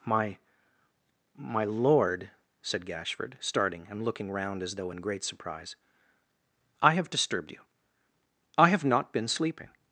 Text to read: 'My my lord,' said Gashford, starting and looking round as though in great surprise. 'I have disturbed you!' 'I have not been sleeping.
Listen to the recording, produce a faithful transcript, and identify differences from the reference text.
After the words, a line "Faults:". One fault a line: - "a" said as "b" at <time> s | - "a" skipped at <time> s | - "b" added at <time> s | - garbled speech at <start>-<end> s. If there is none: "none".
'My my lord,' said Gashford, starting and looking round as though in great surprise. 'I have disturbed you!' 'I have not been sleeping.
Faults:
none